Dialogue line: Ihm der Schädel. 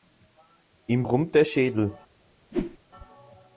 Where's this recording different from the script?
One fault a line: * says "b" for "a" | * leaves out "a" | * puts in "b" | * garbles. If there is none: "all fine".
* puts in "brummt"